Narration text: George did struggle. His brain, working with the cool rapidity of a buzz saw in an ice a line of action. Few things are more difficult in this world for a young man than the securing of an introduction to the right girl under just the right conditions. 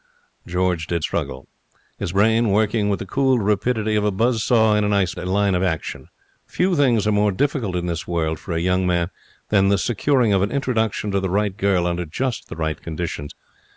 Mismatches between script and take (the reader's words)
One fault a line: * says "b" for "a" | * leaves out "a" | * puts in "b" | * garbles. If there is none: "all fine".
all fine